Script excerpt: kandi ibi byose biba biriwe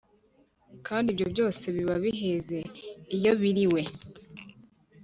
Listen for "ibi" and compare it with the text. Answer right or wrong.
wrong